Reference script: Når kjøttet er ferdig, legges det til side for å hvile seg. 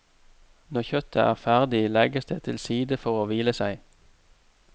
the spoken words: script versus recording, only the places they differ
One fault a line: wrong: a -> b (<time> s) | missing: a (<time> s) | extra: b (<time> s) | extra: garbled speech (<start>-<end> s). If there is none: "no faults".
no faults